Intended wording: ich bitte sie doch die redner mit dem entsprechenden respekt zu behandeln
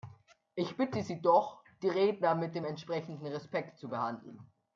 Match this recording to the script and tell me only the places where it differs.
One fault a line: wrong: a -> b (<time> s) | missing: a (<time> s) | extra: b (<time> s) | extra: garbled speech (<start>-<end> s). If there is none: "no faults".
no faults